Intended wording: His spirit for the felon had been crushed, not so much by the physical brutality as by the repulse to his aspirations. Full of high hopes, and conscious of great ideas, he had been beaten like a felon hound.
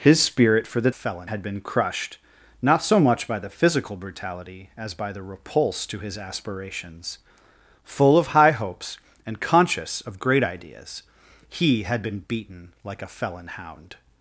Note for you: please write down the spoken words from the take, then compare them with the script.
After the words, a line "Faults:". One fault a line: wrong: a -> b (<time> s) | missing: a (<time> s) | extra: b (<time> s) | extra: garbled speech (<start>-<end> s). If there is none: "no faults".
His spirit for the felon had been crushed, not so much by the physical brutality as by the repulse to his aspirations. Full of high hopes, and conscious of great ideas, he had been beaten like a felon hound.
Faults:
no faults